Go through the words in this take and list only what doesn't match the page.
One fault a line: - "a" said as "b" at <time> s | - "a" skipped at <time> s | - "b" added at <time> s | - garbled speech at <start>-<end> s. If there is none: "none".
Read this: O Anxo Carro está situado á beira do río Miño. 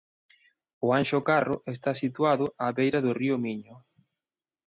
none